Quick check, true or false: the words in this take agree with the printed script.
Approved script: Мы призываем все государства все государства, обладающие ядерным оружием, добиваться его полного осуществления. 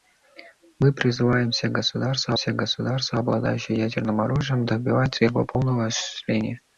true